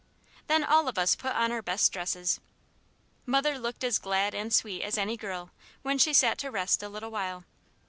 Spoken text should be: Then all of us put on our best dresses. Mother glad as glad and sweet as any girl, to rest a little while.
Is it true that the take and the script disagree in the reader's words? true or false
true